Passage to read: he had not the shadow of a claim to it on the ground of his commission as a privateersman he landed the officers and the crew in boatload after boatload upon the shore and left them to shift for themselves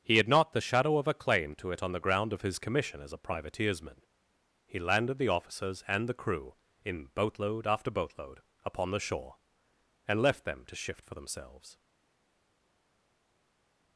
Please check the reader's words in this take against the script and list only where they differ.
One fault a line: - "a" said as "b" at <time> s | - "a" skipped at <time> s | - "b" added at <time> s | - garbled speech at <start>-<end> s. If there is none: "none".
none